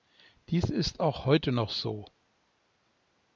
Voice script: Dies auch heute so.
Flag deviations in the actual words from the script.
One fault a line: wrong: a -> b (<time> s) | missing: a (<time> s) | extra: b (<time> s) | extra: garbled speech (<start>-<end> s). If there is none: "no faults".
extra: ist (0.6 s)
extra: noch (1.5 s)